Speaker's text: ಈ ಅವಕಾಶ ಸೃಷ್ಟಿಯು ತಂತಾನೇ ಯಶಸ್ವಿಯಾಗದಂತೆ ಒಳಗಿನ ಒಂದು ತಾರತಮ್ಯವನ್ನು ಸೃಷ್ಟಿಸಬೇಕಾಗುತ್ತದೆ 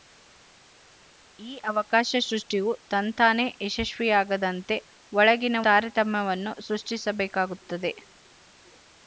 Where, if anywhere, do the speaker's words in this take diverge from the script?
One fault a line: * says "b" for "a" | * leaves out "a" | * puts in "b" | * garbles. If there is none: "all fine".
* leaves out "ಒಂದು"